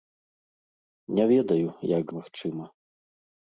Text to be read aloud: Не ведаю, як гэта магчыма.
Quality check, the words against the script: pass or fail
fail